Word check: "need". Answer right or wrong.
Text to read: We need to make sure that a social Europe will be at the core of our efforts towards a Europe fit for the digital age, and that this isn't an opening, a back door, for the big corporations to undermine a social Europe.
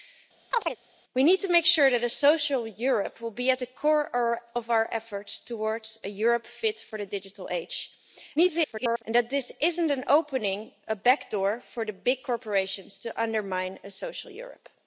right